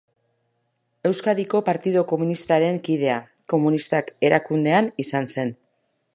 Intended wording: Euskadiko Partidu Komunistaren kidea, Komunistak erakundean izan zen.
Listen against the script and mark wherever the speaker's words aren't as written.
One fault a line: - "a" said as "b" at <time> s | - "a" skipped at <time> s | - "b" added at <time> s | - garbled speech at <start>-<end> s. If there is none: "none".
none